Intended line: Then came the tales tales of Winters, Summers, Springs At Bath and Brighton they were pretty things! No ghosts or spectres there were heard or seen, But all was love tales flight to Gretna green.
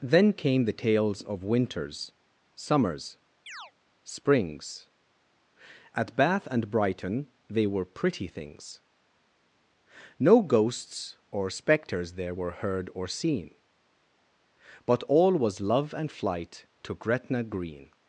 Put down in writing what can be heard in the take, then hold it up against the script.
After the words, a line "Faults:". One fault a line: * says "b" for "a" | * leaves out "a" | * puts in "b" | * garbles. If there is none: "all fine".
Then came the tales of Winters, Summers, Springs At Bath and Brighton they were pretty things! No ghosts or spectres there were heard or seen, But all was love and flight to Gretna green.
Faults:
* leaves out "tales"
* says "and" for "tales"